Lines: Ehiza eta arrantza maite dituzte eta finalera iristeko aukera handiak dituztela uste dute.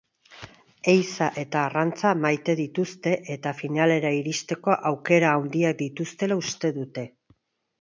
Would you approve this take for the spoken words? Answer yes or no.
yes